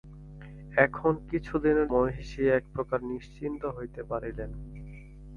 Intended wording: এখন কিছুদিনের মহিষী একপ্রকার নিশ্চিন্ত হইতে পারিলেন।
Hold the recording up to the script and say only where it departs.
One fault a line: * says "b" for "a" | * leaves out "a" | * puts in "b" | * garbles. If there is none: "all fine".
all fine